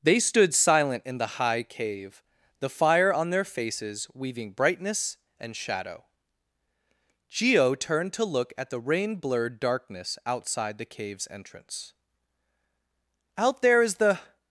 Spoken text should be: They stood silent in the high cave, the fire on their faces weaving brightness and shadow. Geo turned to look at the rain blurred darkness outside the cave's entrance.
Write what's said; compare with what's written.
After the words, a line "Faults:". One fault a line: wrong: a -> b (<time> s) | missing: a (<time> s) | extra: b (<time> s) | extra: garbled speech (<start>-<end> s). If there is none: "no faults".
They stood silent in the high cave, the fire on their faces weaving brightness and shadow. Geo turned to look at the rain blurred darkness outside the cave's entrance. "Out there is the
Faults:
extra: Out there is the (13.4 s)